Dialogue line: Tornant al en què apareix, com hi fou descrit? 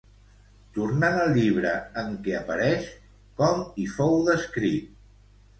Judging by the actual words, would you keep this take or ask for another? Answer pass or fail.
fail